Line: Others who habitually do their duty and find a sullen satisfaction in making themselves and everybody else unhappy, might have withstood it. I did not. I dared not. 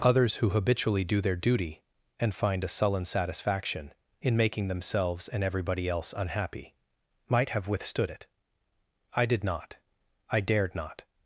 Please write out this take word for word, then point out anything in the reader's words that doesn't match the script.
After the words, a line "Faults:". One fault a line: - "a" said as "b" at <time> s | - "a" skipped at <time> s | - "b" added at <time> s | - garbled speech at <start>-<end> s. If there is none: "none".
Others who habitually do their duty and find a sullen satisfaction in making themselves and everybody else unhappy, might have withstood it. I did not. I dared not.
Faults:
none